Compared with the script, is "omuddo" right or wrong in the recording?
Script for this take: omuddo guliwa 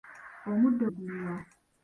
right